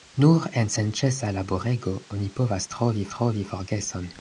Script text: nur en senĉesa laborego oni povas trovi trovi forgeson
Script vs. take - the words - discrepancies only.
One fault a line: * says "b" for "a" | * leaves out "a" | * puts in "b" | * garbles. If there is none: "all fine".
all fine